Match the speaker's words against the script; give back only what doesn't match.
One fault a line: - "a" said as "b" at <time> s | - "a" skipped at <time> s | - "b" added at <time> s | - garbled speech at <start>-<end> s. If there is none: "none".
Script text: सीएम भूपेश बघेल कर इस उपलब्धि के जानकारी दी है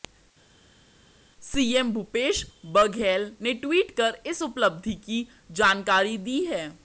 - "ने ट्वीट" added at 3.4 s
- "के" said as "की" at 5.1 s